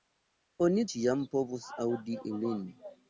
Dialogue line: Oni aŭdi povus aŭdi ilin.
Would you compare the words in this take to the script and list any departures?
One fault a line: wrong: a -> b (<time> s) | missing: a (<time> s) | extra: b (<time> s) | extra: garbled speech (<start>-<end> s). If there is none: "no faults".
wrong: aŭdi -> ĉiam (0.9 s)